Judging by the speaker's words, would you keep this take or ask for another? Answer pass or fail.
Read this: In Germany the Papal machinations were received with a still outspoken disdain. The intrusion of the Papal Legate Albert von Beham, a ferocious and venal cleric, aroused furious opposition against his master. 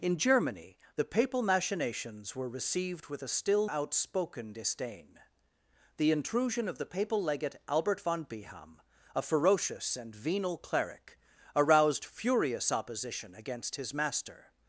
pass